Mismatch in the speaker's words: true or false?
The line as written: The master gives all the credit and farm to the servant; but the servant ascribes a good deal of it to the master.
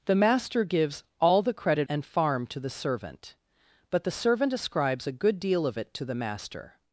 false